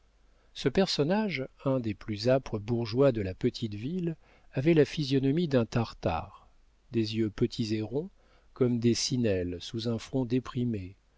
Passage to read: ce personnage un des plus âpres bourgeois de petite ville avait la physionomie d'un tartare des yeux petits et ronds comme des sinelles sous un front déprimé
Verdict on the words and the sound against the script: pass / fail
fail